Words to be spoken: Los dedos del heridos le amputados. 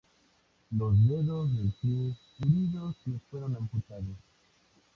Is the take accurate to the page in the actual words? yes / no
no